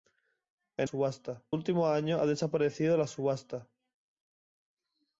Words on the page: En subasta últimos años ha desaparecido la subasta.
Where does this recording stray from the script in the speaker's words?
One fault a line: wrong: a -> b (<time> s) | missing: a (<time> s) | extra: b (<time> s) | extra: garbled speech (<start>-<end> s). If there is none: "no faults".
no faults